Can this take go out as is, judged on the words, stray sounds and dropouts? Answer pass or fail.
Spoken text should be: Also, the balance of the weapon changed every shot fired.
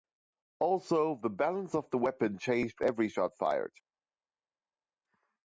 pass